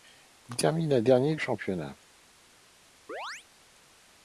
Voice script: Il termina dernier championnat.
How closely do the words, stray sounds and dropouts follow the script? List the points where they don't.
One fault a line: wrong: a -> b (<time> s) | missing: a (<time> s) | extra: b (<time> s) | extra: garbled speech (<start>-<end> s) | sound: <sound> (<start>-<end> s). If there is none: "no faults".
sound: chirp (3.1-3.5 s)